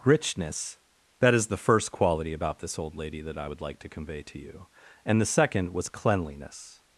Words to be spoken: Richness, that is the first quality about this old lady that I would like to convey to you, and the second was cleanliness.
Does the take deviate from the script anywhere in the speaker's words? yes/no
no